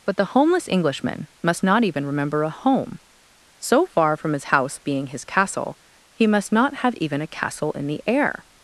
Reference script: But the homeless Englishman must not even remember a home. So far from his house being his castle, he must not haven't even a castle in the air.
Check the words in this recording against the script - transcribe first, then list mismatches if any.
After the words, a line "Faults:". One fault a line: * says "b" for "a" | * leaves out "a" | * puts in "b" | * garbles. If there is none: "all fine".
But the homeless Englishman must not even remember a home. So far from his house being his castle, he must not have even a castle in the air.
Faults:
* says "have" for "haven't"